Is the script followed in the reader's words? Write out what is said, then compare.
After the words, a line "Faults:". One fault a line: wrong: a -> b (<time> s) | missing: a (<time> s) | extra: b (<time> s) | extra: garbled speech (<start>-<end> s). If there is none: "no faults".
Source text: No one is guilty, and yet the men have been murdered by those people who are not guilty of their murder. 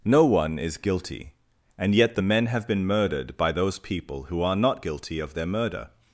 No one is guilty, and yet the men have been murdered by those people who are not guilty of their murder.
Faults:
no faults